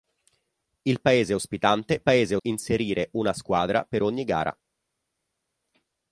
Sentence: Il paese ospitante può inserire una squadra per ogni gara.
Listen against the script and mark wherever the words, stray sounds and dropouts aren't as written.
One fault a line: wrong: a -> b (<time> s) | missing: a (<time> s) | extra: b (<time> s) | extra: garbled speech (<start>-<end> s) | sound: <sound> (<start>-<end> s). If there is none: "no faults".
wrong: può -> paese (2.0 s)